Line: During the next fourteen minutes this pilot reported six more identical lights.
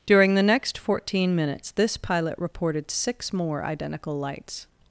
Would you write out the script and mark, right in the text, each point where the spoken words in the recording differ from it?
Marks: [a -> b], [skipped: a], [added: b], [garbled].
During the next fourteen minutes this pilot reported six more identical lights.